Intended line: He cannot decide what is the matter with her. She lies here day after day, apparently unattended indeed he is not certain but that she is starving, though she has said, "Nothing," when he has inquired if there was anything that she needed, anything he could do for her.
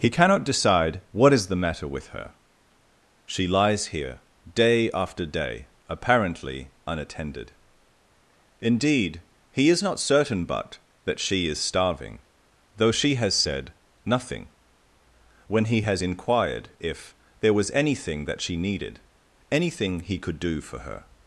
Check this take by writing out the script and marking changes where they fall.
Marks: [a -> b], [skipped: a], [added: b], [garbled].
He cannot decide what is the matter with her. She lies here day after day, apparently unattended indeed he is not certain but that she is starving, though she has said, "Nothing," when he has inquired if there was anything that she needed, anything he could do for her.